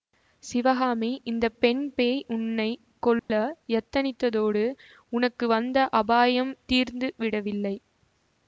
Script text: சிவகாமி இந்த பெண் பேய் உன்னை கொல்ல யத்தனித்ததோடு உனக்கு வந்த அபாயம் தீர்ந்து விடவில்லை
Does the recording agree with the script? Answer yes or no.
yes